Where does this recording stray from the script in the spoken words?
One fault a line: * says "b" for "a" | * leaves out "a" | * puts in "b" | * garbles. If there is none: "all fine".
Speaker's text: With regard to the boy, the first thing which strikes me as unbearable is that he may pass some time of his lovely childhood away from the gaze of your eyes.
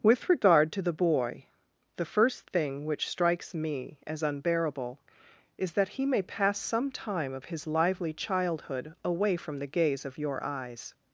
* says "lively" for "lovely"